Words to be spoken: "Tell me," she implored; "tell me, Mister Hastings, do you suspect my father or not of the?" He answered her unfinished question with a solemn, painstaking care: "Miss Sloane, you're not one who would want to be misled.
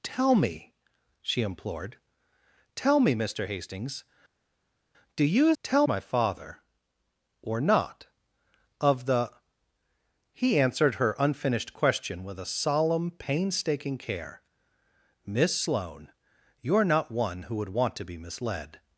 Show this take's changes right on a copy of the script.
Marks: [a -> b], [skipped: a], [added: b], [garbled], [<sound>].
"Tell me," she implored; "tell me, Mister Hastings, do you [suspect -> tell] my father or not of the?" He answered her unfinished question with a solemn, painstaking care: "Miss Sloane, you're not one who would want to be misled.